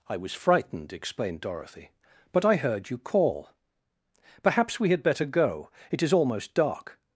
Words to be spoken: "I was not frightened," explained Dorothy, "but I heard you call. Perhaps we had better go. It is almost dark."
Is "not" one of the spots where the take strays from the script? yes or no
yes